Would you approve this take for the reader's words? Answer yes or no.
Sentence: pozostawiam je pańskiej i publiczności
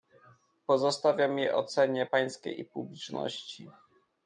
no